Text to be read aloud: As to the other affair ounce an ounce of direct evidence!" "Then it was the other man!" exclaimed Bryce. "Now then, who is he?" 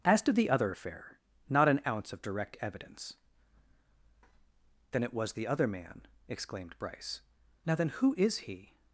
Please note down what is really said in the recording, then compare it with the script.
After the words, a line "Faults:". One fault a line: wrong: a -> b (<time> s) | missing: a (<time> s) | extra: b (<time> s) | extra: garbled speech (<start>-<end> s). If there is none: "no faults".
As to the other affair not an ounce of direct evidence!" "Then it was the other man!" exclaimed Bryce. "Now then, who is he?"
Faults:
wrong: ounce -> not (1.5 s)